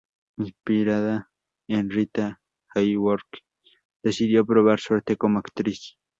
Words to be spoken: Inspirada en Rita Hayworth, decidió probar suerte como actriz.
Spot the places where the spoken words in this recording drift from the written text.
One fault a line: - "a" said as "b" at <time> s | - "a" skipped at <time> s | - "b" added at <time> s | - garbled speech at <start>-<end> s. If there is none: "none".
none